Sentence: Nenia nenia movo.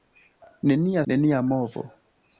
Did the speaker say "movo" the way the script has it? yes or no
yes